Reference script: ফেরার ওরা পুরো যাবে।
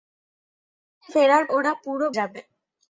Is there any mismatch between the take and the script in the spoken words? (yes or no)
no